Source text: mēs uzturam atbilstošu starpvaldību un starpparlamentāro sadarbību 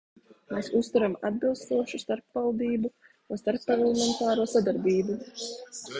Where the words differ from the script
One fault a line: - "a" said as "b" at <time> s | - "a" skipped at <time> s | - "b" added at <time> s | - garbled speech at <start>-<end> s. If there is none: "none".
none